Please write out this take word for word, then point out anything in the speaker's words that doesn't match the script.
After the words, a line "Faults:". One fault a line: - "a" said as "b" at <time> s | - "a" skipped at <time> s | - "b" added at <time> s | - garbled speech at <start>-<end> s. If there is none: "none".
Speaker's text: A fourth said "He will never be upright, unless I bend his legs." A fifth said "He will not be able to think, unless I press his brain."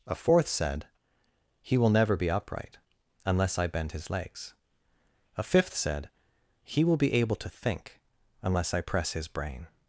A fourth said "He will never be upright, unless I bend his legs." A fifth said "He will be able to think, unless I press his brain."
Faults:
- "not" skipped at 7.0 s